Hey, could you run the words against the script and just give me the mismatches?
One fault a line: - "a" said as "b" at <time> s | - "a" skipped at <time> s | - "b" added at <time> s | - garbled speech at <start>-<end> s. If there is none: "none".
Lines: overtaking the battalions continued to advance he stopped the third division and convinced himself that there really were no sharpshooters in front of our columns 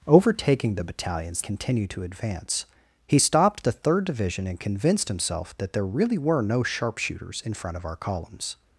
none